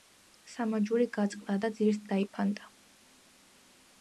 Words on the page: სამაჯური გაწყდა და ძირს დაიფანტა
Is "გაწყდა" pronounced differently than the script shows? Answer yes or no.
no